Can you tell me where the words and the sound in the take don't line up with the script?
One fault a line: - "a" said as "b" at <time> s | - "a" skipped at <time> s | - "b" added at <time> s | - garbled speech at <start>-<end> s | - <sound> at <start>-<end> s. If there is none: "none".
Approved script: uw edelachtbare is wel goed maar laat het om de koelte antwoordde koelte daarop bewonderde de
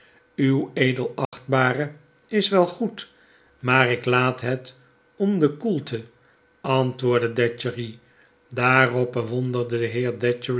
- dropout at 1.2-1.3 s
- "ik" added at 3.9 s
- "koelte" said as "datchery" at 7.3 s